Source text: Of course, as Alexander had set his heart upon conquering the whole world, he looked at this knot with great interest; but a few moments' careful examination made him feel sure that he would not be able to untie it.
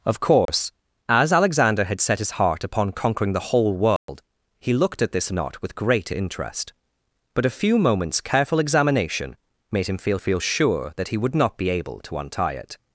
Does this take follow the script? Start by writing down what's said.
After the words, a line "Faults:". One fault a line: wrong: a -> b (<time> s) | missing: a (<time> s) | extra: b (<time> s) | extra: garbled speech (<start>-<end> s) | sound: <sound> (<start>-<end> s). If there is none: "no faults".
Of course, as Alexander had set his heart upon conquering the whole world, he looked at this knot with great interest; but a few moments' careful examination made him feel feel sure that he would not be able to untie it.
Faults:
sound: dropout (0.5-0.5 s)
sound: dropout (4.0-4.1 s)
extra: feel (10.2 s)